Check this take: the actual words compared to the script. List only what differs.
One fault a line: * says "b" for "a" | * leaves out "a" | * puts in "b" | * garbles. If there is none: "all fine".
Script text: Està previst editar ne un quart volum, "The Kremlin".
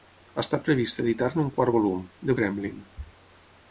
all fine